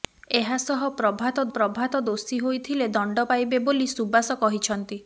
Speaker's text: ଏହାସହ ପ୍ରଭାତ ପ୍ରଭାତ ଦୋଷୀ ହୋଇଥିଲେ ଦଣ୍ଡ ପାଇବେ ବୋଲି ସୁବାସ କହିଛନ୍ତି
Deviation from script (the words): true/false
false